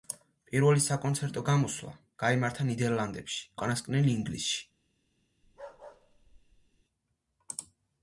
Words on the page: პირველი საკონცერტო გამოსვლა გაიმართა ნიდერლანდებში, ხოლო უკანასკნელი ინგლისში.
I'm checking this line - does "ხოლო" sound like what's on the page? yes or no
no